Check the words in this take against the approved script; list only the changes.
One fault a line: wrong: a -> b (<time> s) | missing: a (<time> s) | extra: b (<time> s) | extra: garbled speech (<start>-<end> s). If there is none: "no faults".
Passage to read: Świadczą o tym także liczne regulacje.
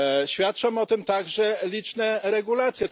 no faults